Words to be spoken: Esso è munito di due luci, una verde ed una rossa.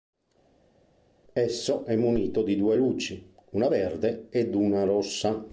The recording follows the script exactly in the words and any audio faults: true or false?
true